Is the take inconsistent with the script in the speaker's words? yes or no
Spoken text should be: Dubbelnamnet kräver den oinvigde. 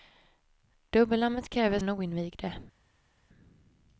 no